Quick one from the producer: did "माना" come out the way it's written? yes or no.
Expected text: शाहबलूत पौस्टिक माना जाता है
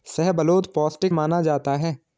yes